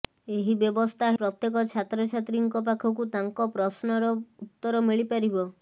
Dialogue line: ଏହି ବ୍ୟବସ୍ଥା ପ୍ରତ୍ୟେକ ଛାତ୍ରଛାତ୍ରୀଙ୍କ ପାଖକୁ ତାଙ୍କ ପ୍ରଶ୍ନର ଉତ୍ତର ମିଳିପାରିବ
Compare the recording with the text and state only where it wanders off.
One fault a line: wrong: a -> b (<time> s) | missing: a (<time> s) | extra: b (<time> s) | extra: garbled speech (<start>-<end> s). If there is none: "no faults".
no faults